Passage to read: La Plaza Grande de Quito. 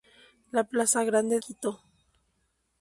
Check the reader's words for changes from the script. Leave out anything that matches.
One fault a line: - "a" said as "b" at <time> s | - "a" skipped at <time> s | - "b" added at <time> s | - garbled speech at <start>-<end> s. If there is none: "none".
- "de" skipped at 1.4 s